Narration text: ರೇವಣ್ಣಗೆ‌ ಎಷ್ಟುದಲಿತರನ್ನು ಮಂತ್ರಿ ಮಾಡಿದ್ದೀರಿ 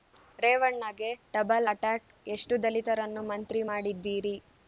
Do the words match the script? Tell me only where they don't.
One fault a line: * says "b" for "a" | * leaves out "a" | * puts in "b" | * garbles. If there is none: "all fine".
* puts in "ಡಬಲ್ ಅಟ್ಯಾಕ್"